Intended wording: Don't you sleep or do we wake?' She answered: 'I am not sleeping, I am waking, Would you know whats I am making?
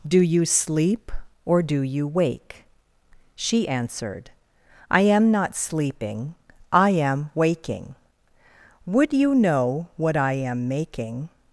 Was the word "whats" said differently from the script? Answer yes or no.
yes